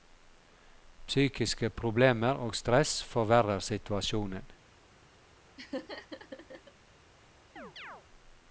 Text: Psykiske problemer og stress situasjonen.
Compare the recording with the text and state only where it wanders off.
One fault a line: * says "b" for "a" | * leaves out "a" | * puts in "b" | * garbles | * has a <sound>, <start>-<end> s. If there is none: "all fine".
* puts in "forverrer"
* has a laugh, 5.6-6.7 s
* has a chirp, 7.6-8.0 s